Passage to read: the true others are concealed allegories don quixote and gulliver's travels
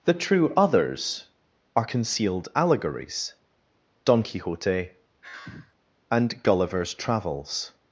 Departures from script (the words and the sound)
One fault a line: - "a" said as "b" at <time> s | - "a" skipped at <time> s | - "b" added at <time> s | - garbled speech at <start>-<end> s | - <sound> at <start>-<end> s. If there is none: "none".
- sigh at 5.2-5.8 s